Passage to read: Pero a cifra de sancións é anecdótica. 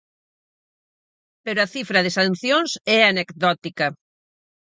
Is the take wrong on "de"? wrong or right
right